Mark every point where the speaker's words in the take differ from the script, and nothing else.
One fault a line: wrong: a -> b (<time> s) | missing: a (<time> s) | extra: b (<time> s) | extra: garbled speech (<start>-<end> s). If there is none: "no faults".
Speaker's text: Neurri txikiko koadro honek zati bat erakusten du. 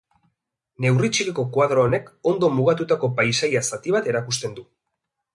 extra: ondo mugatutako paisaia (2.3 s)